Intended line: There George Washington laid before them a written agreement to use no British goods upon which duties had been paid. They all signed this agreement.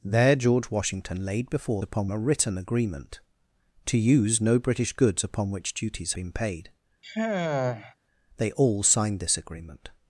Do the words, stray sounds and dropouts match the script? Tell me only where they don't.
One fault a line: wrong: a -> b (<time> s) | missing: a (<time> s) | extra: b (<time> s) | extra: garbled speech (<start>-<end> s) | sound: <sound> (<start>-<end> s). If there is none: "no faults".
wrong: them -> upon (1.8 s)
missing: had (6.1 s)
sound: sigh (7.0-7.9 s)